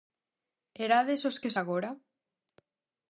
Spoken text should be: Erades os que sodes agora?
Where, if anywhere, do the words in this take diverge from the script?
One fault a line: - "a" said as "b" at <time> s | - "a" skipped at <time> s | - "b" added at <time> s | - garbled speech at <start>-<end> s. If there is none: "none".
- "sodes" skipped at 1.5 s